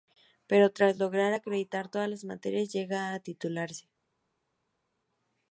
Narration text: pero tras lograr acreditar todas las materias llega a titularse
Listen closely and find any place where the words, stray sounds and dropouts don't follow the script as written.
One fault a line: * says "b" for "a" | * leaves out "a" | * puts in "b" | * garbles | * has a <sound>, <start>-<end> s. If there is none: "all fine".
all fine